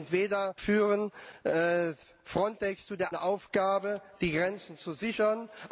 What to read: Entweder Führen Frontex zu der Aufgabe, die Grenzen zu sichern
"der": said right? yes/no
yes